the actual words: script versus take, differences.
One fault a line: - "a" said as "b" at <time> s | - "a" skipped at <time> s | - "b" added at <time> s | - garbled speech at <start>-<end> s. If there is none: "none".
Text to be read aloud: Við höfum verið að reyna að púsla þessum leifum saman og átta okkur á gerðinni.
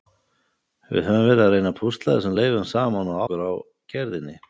- "átta" skipped at 3.2 s